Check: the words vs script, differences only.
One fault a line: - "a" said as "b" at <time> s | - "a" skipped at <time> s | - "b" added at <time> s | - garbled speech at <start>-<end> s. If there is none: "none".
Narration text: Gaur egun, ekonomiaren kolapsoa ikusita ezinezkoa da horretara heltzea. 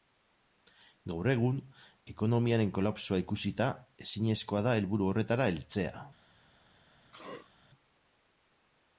- "helburu" added at 4.8 s